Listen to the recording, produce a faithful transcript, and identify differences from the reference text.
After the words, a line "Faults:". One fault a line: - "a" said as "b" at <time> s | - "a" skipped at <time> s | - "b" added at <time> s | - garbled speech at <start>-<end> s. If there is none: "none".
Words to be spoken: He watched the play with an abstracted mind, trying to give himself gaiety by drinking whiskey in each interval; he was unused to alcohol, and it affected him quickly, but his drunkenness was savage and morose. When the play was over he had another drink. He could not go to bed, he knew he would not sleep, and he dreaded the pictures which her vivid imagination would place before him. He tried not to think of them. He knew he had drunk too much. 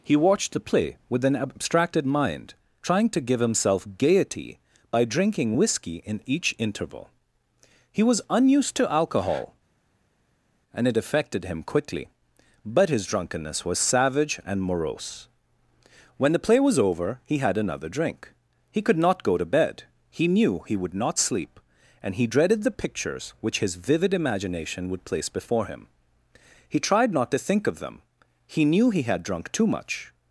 He watched the play with an abstracted mind, trying to give himself gaiety by drinking whiskey in each interval; he was unused to alcohol, and it affected him quickly, but his drunkenness was savage and morose. When the play was over he had another drink. He could not go to bed, he knew he would not sleep, and he dreaded the pictures which his vivid imagination would place before him. He tried not to think of them. He knew he had drunk too much.
Faults:
- "her" said as "his" at 23.6 s